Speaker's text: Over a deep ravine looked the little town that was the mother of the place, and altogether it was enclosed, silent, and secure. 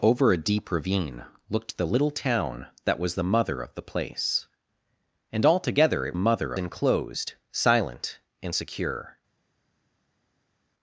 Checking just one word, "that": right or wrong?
right